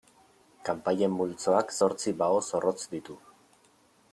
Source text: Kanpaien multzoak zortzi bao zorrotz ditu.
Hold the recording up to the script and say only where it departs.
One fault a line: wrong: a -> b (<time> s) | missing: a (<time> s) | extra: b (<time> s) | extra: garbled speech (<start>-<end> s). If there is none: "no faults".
no faults